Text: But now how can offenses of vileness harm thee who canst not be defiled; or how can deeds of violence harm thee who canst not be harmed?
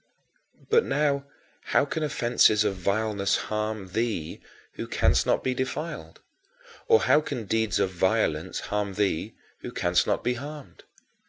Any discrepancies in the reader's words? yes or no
no